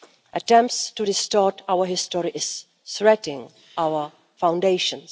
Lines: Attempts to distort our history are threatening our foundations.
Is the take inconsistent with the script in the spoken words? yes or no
no